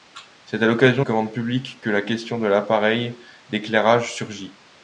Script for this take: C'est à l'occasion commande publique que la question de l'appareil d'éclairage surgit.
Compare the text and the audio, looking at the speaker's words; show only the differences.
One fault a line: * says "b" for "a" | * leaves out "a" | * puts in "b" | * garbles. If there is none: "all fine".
all fine